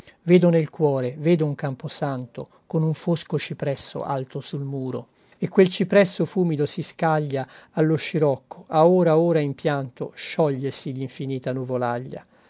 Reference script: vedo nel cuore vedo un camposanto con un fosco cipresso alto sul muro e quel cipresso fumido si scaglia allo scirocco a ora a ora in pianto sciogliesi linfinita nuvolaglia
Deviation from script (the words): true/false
false